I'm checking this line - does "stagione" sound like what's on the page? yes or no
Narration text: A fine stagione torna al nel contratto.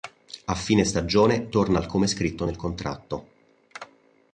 yes